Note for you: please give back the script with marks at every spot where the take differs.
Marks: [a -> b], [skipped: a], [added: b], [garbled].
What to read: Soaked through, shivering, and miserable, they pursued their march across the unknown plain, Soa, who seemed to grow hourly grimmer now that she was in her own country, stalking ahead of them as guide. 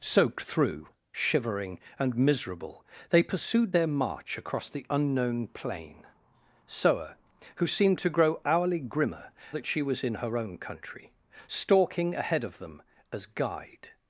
Soaked through, shivering, and miserable, they pursued their march across the unknown plain, Soa, who seemed to grow hourly grimmer [skipped: now] that she was in her own country, stalking ahead of them as guide.